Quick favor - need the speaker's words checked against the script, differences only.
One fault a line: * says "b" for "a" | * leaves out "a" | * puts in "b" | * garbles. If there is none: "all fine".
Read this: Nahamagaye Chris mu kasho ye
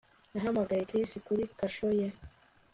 * says "kuri" for "mu"